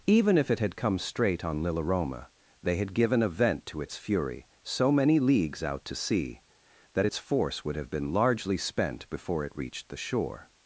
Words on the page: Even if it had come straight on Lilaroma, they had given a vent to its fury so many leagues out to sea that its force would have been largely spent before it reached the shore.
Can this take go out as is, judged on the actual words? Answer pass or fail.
pass